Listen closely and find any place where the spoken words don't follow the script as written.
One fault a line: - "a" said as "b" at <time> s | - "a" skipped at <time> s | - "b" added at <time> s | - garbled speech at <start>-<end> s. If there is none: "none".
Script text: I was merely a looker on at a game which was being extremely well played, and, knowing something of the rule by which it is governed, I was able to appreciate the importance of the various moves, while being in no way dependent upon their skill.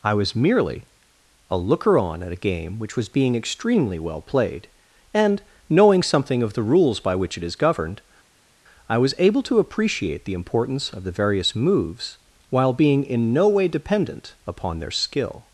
- "rule" said as "rules" at 6.6 s